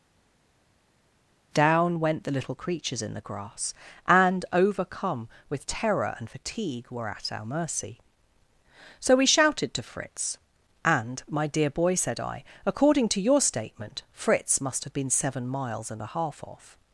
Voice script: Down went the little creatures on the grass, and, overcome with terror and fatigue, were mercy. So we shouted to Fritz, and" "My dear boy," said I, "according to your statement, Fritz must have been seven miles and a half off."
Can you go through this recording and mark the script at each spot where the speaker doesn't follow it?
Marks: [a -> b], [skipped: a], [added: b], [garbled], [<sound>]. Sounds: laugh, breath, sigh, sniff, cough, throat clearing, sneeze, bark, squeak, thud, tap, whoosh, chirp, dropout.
Down went the little creatures [on -> in] the grass, and, overcome with terror and fatigue, were [added: at our] mercy. So we shouted to Fritz, and" "My dear boy," said I, "according to your statement, Fritz must have been seven miles and a half off."